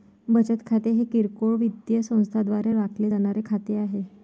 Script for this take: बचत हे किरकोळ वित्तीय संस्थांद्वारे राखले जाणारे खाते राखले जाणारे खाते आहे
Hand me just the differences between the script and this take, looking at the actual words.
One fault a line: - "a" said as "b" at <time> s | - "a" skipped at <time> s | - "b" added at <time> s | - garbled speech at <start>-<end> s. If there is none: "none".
- "खाते" added at 0.7 s
- "राखले जाणारे खाते" skipped at 3.8 s